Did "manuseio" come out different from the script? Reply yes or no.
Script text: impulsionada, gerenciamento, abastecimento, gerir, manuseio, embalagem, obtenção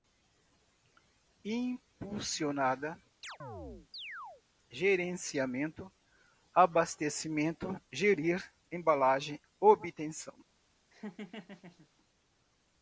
yes